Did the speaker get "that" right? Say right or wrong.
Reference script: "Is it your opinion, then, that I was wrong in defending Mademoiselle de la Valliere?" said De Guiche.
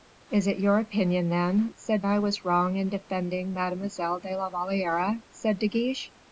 wrong